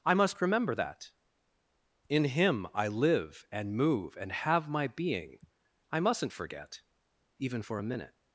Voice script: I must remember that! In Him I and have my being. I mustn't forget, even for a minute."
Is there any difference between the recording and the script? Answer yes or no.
yes